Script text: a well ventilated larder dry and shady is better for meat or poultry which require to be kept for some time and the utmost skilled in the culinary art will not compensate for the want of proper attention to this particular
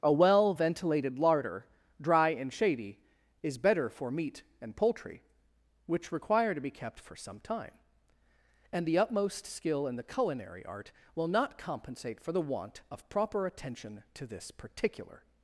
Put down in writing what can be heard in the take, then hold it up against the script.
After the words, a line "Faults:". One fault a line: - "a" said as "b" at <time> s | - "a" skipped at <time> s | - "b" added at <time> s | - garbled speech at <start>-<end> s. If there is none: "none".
a well ventilated larder dry and shady is better for meat and poultry which require to be kept for some time and the utmost skill in the culinary art will not compensate for the want of proper attention to this particular
Faults:
- "or" said as "and" at 4.6 s
- "skilled" said as "skill" at 9.5 s